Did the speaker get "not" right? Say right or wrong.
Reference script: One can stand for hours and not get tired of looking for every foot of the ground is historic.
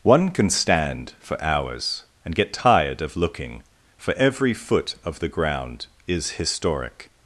wrong